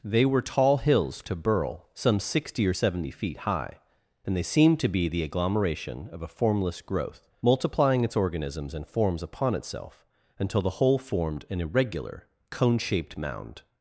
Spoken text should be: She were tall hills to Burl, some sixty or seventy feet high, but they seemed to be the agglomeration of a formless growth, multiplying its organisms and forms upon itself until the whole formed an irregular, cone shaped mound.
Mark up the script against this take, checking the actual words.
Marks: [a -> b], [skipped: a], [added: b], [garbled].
[She -> They] were tall hills to Burl, some sixty or seventy feet high, [but -> and] they seemed to be the agglomeration of a formless growth, multiplying its organisms and forms upon itself until the whole formed an irregular, cone shaped mound.